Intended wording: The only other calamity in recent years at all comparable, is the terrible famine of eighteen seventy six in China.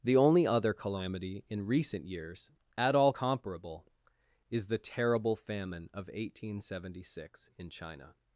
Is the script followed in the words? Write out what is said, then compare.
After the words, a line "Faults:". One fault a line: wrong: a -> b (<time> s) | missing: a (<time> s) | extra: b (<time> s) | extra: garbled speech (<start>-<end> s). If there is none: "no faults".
The only other calamity in recent years at all comparable, is the terrible famine of eighteen seventy six in China.
Faults:
no faults